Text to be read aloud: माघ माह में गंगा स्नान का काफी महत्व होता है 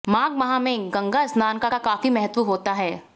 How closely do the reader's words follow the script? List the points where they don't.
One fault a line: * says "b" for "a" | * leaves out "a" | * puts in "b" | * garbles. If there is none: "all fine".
* puts in "का"